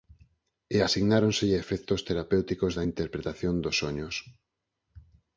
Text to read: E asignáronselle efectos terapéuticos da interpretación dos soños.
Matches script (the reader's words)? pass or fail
pass